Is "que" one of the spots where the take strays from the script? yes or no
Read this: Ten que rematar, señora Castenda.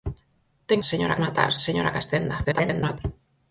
yes